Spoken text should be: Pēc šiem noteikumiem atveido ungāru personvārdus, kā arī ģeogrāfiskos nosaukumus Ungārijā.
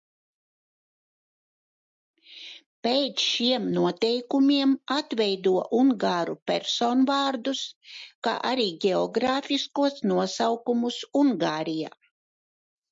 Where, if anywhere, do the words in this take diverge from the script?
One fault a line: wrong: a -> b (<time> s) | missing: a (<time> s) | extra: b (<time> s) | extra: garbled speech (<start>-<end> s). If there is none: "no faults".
no faults